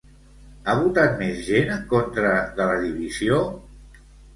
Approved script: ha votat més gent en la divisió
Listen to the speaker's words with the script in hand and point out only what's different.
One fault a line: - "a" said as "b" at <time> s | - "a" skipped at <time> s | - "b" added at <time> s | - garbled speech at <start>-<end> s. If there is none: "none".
- "contra de" added at 2.0 s